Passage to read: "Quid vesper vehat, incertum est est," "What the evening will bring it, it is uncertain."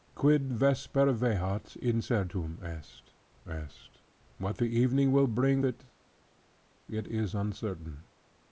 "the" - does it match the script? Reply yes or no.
yes